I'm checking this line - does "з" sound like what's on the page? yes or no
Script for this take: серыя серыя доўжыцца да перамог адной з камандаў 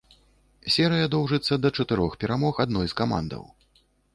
yes